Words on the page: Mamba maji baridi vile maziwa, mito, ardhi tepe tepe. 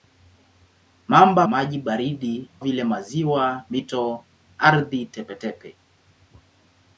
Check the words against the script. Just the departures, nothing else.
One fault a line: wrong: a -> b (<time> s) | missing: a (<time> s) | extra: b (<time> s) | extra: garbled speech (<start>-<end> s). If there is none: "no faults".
no faults